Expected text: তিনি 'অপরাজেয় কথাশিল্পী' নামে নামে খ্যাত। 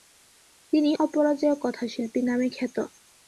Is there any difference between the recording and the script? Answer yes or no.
yes